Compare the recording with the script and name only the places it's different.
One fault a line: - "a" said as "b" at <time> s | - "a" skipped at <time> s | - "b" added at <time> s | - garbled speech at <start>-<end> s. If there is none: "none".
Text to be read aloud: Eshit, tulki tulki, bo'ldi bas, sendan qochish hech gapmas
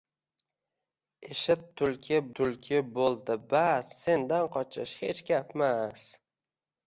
none